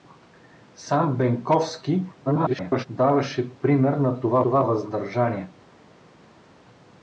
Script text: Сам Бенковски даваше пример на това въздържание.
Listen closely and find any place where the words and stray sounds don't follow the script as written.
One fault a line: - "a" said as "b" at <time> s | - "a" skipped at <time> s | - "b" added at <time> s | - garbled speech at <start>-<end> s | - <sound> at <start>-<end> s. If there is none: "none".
- garbled speech at 2.2-2.9 s
- "това" added at 4.4 s